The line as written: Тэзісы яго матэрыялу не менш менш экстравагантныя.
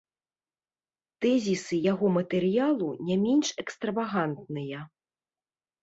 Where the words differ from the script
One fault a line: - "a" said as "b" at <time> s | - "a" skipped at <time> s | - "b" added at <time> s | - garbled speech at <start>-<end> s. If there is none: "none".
- "менш" skipped at 3.5 s